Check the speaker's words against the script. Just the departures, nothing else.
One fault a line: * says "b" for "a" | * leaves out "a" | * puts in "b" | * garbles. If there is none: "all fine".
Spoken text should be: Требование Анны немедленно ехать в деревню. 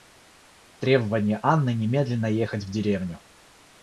all fine